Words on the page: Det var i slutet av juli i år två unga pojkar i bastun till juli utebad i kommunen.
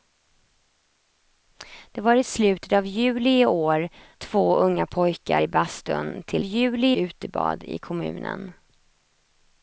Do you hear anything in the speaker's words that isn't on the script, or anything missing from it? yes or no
no